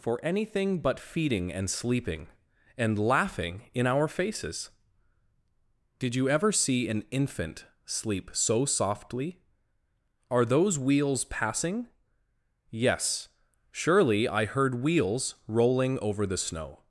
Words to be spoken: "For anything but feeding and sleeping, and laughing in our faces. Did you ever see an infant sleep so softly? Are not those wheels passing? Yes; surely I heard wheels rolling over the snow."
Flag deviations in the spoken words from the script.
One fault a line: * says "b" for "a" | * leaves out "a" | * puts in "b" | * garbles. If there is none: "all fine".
* leaves out "not"